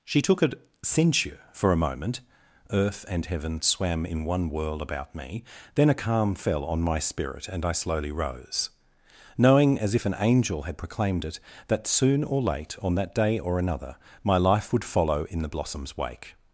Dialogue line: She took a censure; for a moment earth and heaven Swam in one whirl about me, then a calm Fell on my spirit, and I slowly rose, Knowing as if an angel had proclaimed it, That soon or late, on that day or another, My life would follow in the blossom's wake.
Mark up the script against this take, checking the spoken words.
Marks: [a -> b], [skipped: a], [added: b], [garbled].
She took a censure; for a moment earth and heaven Swam in one whirl about me, then a calm Fell on my spirit, and I slowly rose, Knowing as if an angel had proclaimed it, That soon or late, on that day or another, My life would follow in the blossom's wake.